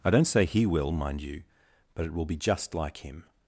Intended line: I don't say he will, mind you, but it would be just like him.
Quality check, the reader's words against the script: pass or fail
fail